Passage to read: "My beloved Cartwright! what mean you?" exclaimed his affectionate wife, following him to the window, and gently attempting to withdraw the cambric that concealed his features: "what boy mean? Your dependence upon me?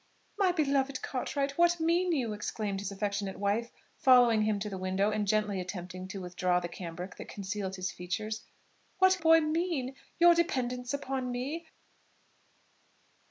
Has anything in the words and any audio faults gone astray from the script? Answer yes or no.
no